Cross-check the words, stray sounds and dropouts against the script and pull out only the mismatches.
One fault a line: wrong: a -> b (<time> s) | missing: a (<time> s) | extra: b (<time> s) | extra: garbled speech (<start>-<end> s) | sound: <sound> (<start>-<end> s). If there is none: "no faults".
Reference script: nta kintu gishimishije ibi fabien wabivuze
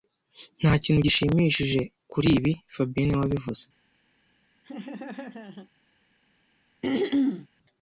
extra: kuri (2.1 s)
extra: niwe (3.1 s)
sound: laugh (4.6-5.7 s)
sound: throat clearing (6.8-7.5 s)